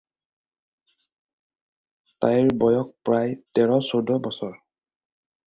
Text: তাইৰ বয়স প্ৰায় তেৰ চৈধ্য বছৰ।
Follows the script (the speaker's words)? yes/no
yes